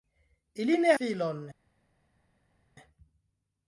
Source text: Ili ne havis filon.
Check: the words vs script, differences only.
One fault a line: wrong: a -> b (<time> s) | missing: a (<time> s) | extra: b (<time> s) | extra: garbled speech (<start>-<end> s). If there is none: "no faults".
missing: havis (0.9 s)